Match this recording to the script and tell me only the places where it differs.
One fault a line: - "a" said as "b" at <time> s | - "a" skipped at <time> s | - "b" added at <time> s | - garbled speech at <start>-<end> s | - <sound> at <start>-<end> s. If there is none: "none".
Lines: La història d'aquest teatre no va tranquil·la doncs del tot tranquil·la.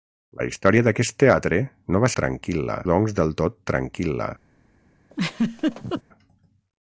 - laugh at 5.1-6.0 s